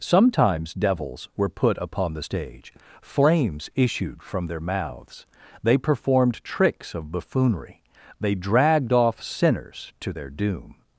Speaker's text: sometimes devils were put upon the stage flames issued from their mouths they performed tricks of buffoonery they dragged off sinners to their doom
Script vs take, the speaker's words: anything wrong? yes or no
no